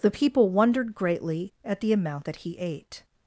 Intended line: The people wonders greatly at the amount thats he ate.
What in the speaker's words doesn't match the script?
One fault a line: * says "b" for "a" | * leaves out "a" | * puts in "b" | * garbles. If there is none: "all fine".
* says "wondered" for "wonders"
* says "that" for "thats"